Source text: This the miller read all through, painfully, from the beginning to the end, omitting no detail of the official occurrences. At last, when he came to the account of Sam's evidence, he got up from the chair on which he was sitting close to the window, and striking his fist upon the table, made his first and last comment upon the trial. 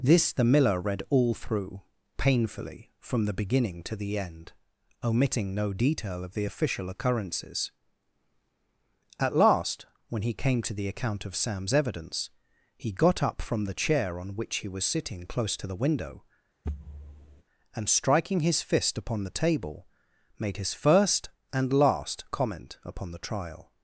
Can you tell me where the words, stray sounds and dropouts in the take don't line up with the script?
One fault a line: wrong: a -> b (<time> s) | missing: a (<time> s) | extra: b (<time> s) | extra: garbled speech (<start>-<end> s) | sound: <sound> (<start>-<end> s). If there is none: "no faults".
sound: thud (16.6-17.4 s)